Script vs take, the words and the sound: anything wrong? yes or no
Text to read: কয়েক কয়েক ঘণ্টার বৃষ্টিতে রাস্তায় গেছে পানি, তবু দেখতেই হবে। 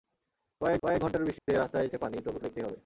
yes